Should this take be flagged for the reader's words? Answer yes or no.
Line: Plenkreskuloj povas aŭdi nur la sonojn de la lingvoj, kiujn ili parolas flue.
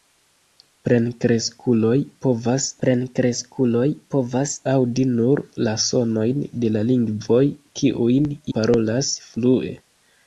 yes